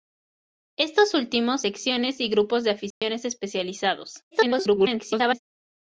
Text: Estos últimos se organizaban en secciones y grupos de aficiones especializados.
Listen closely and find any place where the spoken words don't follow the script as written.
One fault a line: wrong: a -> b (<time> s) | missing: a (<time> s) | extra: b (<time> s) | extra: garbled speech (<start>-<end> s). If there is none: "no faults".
missing: se organizaban en (1.6 s)
extra: garbled speech (4.3-5.4 s)